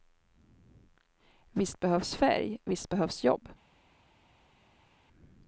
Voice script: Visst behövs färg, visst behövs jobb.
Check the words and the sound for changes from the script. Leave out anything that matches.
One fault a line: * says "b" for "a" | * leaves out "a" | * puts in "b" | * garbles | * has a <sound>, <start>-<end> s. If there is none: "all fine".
all fine